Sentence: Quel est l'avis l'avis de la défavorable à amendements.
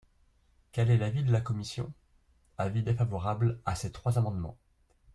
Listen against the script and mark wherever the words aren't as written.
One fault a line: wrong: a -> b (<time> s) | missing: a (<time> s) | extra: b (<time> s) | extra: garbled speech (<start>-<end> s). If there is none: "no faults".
missing: l'avis (1.2 s)
extra: commission Avis (1.4 s)
extra: ces trois (3.8 s)